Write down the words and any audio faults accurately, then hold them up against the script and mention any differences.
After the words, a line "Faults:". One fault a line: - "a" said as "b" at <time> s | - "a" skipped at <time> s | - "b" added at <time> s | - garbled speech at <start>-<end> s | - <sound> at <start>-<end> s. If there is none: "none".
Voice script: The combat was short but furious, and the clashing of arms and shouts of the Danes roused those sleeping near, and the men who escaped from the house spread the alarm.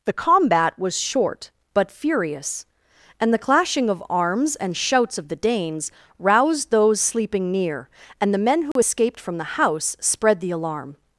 The combat was short but furious, and the clashing of arms and shouts of the Danes roused those sleeping near, and the men who escaped from the house spread the alarm.
Faults:
- dropout at 8.7-8.8 s